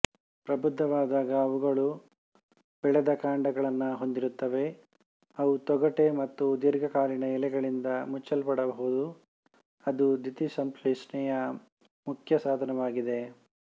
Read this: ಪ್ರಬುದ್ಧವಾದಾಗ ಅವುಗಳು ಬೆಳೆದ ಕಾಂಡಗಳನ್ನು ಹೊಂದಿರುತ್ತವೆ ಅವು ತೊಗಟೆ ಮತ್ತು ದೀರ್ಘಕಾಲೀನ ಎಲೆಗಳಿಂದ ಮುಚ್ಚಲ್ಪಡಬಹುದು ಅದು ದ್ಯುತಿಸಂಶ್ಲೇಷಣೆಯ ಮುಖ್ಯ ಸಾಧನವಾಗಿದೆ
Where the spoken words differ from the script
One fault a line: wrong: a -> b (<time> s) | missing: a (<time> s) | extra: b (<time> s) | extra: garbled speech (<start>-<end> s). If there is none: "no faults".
no faults